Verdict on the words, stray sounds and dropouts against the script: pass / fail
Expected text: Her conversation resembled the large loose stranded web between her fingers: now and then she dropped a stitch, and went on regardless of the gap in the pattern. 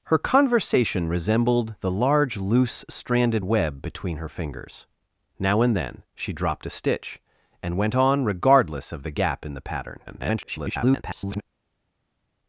fail